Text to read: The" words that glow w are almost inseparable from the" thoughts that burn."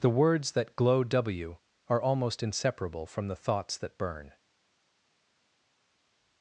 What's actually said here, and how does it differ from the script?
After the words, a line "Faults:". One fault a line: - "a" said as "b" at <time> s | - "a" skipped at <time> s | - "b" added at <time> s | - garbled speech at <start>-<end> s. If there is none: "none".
The" words that glow w are almost inseparable from the" thoughts that burn."
Faults:
none